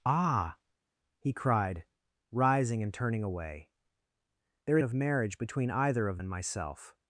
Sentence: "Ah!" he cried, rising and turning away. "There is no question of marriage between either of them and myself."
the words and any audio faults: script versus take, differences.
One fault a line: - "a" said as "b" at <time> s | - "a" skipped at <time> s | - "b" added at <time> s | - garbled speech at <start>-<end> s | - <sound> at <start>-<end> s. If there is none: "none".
- "is no question" skipped at 4.8 s
- "them" skipped at 6.2 s